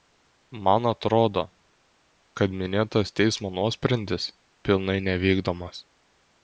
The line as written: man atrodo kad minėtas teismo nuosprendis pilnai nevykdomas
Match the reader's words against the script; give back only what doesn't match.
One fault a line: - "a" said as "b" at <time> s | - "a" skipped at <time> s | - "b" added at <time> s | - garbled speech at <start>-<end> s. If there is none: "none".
none